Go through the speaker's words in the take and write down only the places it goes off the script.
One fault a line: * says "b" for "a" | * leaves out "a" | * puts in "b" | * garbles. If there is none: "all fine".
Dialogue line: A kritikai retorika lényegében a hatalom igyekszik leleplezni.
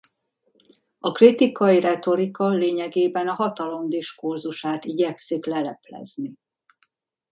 * puts in "diskurzusát"